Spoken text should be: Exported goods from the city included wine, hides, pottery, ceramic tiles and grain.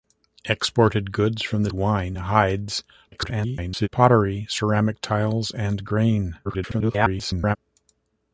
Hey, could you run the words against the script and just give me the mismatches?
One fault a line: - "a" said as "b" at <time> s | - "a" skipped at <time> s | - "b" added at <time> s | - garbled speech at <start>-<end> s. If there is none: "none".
- "city included" skipped at 1.7 s
- garbled speech at 3.1-3.9 s
- garbled speech at 6.4-7.6 s